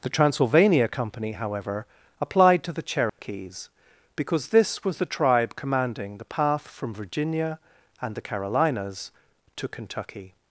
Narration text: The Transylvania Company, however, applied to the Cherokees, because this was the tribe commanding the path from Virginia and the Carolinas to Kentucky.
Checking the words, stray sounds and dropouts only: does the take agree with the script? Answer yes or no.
no